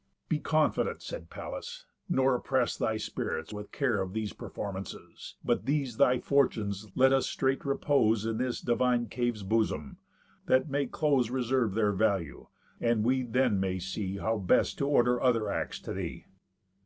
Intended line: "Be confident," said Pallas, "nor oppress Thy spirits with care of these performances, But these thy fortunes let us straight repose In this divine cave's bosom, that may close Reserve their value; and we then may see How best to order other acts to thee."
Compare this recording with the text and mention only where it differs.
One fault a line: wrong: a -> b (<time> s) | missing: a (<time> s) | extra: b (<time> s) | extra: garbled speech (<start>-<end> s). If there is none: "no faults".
no faults